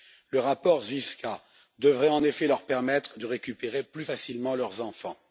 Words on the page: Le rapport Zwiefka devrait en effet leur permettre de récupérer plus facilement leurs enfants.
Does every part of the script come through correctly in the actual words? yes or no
yes